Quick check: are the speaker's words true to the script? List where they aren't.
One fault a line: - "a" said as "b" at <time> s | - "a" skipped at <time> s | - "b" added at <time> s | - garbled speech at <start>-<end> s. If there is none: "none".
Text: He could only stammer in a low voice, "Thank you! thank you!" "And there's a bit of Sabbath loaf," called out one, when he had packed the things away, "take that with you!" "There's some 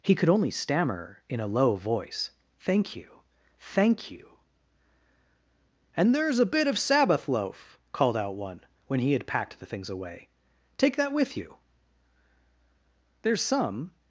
none